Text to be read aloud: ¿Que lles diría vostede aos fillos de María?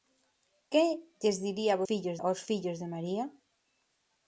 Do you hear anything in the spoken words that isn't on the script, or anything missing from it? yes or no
yes